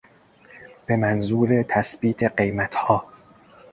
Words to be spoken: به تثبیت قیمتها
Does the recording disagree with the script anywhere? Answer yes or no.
yes